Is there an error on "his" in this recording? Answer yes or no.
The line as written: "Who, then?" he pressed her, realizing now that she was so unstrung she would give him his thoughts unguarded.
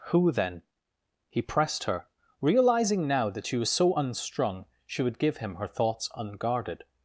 yes